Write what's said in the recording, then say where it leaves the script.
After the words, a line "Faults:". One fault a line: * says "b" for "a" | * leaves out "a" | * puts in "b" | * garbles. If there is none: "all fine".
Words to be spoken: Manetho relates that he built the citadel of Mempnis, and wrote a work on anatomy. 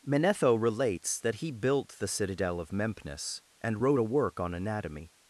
Manetho relates that he built the citadel of Mempnis, and wrote a work on anatomy.
Faults:
all fine